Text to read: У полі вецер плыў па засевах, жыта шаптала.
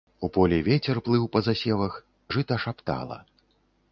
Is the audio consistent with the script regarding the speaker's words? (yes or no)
yes